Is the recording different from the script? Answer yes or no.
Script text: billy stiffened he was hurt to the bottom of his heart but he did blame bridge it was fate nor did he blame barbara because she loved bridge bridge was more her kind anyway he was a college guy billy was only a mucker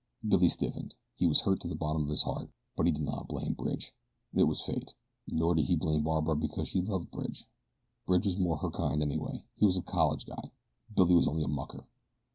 yes